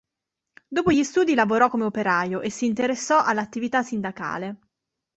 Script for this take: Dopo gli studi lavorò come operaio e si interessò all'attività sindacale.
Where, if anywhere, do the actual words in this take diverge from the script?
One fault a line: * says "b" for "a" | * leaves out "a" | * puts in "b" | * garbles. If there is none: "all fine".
all fine